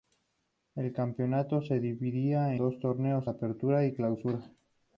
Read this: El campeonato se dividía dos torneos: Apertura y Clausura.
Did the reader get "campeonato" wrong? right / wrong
right